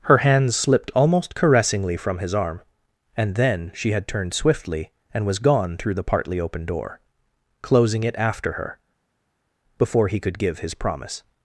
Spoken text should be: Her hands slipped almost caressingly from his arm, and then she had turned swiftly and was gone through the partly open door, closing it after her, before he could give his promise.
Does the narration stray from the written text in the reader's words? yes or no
no